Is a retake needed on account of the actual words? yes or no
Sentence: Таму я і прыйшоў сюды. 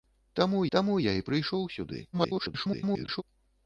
yes